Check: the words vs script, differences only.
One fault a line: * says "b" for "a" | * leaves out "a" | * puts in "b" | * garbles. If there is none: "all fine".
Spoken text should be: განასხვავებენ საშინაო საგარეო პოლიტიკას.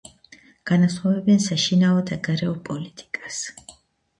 all fine